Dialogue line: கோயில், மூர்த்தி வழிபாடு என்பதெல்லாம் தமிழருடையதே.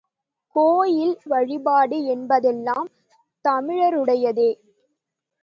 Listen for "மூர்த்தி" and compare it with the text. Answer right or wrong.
wrong